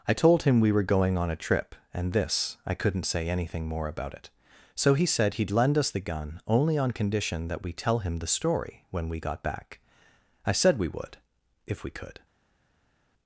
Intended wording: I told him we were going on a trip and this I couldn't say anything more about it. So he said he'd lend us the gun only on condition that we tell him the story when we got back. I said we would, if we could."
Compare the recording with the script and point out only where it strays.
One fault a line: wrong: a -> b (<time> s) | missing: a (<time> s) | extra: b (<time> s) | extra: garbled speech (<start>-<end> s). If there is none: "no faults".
no faults